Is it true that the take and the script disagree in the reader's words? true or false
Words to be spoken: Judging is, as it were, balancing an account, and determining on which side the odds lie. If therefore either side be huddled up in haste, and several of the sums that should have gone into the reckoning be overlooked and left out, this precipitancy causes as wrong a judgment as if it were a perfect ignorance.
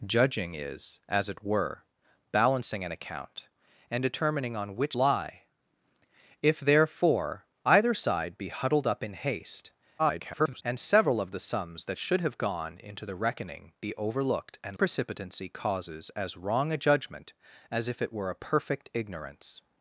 true